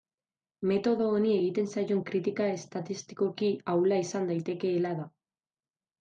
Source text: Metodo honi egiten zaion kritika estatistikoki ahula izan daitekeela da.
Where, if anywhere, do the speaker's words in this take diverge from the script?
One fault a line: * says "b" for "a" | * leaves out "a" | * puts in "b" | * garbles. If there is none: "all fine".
all fine